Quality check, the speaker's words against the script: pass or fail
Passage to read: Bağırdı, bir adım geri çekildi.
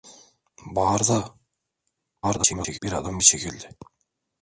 fail